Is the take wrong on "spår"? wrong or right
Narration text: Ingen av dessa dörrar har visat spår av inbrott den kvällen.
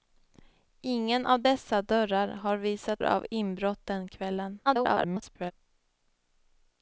wrong